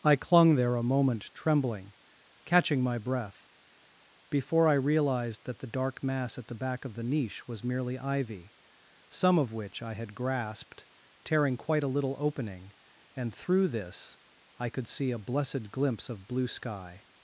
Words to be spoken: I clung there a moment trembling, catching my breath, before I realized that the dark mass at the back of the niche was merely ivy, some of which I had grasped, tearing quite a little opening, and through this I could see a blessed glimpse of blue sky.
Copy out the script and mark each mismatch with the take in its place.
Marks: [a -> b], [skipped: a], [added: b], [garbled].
I clung there a moment trembling, catching my breath, before I realized that the dark mass at the back of the niche was merely ivy, some of which I had grasped, tearing quite a little opening, and through this I could see a blessed glimpse of blue sky.